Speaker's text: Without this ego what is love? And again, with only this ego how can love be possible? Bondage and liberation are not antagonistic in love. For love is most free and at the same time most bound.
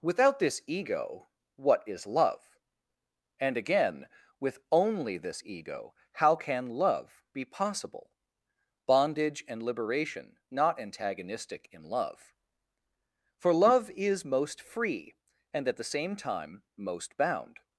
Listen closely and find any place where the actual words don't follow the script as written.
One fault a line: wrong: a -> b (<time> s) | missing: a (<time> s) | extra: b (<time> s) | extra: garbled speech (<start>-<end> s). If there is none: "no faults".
missing: are (10.4 s)